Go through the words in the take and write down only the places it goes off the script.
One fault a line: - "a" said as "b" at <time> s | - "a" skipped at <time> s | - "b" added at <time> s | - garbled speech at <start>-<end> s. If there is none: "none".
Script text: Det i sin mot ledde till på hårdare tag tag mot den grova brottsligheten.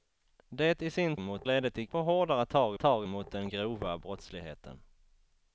none